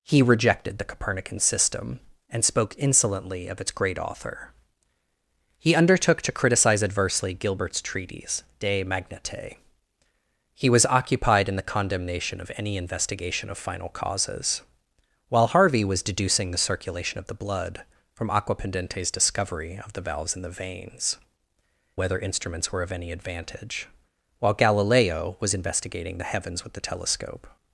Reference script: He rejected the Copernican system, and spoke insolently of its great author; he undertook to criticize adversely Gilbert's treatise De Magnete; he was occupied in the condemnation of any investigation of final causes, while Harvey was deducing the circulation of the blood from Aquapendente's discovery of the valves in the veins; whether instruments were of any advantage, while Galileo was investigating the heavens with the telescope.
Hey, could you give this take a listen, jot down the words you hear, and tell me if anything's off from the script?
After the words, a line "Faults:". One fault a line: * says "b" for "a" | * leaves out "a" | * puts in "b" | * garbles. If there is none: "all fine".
He rejected the Copernican system, and spoke insolently of its great author; he undertook to criticize adversely Gilbert's treatise De Magnete; he was occupied in the condemnation of any investigation of final causes, while Harvey was deducing the circulation of the blood from Aquapendente's discovery of the valves in the veins; whether instruments were of any advantage, while Galileo was investigating the heavens with the telescope.
Faults:
all fine